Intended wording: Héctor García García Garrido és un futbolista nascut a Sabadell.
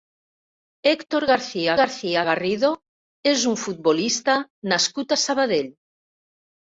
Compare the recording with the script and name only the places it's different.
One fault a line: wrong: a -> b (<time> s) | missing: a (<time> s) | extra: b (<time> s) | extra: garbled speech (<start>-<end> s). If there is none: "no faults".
no faults